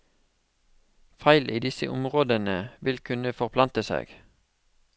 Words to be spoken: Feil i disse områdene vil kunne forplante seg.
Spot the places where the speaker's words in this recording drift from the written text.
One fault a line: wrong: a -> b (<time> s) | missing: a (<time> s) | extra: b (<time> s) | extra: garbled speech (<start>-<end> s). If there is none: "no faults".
no faults